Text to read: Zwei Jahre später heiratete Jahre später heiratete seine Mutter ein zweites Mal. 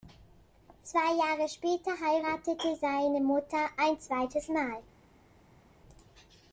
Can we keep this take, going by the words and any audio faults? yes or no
no